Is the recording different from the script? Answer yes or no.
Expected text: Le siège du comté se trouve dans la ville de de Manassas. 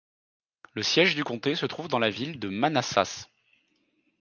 yes